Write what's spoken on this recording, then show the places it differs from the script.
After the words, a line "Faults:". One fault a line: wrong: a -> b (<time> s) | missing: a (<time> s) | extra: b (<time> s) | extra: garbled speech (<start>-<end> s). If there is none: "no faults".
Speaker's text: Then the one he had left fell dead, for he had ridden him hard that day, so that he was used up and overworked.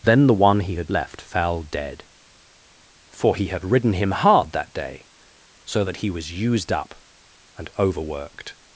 Then the one he had left fell dead, for he had ridden him hard that day, so that he was used up and overworked.
Faults:
no faults